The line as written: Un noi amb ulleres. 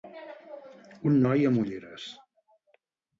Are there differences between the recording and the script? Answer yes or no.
no